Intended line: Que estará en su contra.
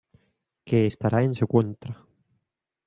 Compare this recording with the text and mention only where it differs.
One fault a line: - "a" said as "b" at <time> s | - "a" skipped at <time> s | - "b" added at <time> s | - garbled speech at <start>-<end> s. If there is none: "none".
none